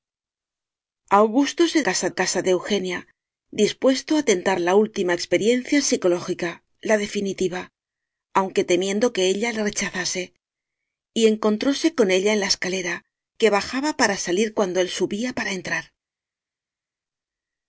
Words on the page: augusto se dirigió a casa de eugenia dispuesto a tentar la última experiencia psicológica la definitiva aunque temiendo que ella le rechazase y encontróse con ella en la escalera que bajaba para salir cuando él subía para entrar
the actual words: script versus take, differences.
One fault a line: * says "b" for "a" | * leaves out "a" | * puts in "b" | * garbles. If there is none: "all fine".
* says "casa" for "dirigió"